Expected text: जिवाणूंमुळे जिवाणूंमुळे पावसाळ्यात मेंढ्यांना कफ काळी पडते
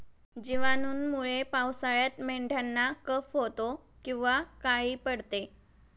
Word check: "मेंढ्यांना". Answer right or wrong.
right